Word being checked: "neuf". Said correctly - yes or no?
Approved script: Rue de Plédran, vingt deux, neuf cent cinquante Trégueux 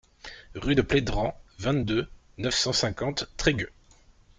yes